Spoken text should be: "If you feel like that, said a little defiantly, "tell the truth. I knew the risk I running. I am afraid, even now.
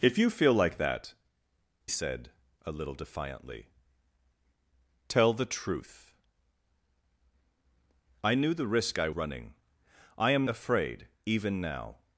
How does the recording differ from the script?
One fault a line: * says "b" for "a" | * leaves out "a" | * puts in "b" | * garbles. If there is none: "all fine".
all fine